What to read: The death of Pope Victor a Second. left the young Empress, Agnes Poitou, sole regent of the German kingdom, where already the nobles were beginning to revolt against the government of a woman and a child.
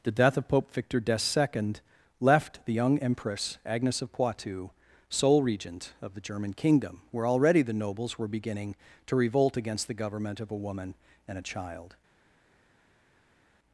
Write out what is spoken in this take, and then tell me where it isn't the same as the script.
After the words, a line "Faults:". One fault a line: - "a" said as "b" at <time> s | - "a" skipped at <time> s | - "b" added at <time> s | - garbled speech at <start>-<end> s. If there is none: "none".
The death of Pope Victor the Second. left the young Empress, Agnes of Poitou, sole regent of the German kingdom, where already the nobles were beginning to revolt against the government of a woman and a child.
Faults:
- "a" said as "the" at 1.0 s
- "of" added at 4.0 s